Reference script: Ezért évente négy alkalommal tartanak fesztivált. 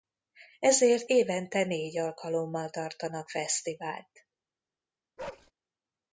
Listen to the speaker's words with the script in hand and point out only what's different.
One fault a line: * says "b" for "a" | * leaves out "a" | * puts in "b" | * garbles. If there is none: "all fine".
all fine